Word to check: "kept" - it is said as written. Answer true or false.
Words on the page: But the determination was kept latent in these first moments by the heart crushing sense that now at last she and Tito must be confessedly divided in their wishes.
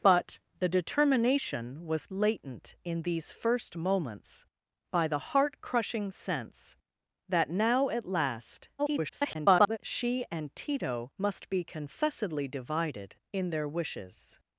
false